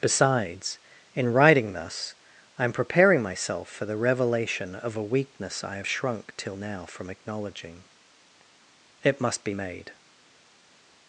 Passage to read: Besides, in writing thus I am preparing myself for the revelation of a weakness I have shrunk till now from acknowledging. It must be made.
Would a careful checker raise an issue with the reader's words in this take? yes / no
no